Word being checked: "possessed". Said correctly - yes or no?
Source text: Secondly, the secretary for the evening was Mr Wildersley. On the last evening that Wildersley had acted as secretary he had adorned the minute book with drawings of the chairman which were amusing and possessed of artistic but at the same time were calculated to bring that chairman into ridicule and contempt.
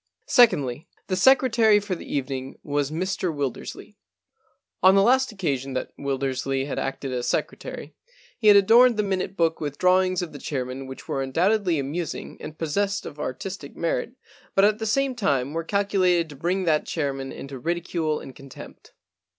yes